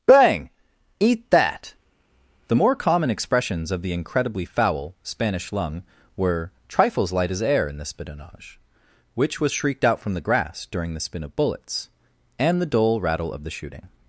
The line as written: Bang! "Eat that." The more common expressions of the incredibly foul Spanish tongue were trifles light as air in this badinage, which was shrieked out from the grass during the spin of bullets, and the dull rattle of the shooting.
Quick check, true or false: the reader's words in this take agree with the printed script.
false